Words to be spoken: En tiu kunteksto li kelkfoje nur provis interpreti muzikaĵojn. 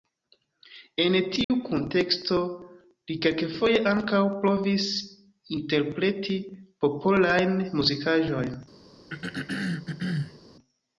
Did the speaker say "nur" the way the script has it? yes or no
no